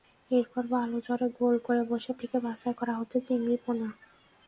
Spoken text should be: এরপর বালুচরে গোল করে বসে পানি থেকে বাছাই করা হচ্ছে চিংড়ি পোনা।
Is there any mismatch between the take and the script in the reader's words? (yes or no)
yes